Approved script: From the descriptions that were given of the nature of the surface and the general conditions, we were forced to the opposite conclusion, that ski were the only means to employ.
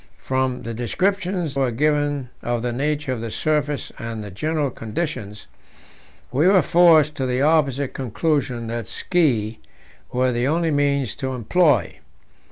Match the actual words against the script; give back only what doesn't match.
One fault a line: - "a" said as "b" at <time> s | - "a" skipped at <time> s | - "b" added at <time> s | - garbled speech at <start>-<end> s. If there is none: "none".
- "that" skipped at 1.6 s